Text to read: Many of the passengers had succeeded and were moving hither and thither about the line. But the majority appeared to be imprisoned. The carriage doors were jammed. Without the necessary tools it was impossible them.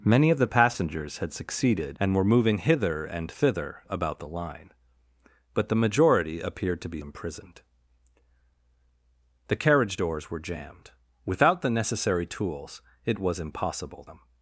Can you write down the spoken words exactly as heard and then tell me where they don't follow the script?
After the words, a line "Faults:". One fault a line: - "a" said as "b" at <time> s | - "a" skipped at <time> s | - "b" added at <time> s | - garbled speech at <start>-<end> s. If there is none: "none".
Many of the passengers had succeeded and were moving hither and thither about the line. But the majority appeared to be imprisoned. The carriage doors were jammed. Without the necessary tools it was impossible them.
Faults:
none